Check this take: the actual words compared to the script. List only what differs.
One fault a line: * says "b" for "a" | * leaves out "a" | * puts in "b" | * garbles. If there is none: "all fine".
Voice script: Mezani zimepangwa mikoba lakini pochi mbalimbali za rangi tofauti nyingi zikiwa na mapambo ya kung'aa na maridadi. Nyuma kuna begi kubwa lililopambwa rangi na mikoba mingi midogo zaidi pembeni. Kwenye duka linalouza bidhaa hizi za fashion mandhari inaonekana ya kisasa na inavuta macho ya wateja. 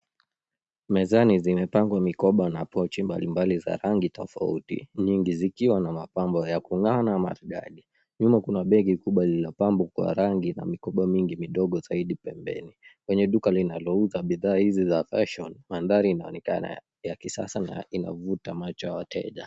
* says "na" for "lakini"
* puts in "kwa"